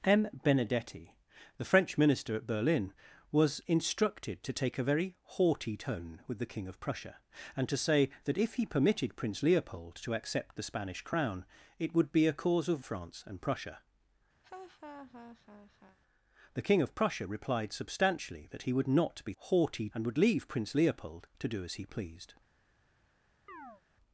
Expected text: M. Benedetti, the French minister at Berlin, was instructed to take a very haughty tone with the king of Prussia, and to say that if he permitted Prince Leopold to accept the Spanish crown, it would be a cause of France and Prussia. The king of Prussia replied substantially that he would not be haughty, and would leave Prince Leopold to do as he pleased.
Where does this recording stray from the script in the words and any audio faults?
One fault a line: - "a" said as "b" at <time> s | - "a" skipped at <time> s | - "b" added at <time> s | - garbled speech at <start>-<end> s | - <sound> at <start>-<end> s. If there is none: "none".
- laugh at 14.4-16.0 s
- chirp at 23.5-23.8 s